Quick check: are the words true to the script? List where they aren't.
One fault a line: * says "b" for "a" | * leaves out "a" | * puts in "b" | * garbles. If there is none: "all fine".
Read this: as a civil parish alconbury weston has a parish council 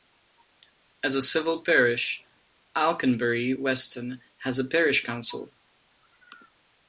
all fine